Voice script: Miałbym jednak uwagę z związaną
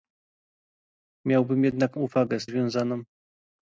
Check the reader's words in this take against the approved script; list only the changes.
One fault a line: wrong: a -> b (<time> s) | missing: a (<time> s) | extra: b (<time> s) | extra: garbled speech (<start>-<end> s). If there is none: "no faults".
no faults